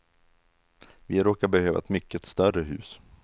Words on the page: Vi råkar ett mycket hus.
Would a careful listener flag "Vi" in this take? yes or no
no